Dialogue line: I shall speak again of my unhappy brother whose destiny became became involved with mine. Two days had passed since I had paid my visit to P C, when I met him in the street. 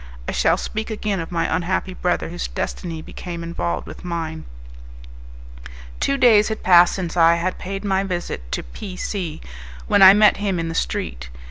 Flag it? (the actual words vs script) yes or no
yes